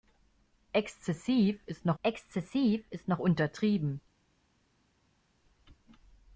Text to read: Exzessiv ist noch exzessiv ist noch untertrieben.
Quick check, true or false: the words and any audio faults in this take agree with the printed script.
true